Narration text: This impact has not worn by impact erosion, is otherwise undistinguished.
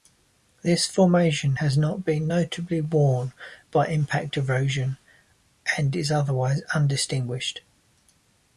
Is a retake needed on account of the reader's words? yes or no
yes